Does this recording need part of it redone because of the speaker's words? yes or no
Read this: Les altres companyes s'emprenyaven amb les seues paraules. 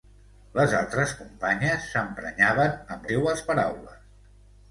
yes